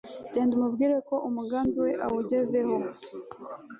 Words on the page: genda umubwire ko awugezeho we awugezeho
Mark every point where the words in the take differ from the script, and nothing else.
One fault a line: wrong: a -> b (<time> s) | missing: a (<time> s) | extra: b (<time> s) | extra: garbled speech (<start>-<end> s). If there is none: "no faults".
wrong: awugezeho -> umugambi (1.3 s)